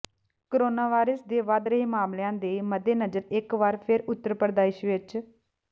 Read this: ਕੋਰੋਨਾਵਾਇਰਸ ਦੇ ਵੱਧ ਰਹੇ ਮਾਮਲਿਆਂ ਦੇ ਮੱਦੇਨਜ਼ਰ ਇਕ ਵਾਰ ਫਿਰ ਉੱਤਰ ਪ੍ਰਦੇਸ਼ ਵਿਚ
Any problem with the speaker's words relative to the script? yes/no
no